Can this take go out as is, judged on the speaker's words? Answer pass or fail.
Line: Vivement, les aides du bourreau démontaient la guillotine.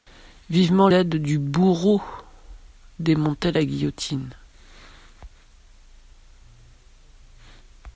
fail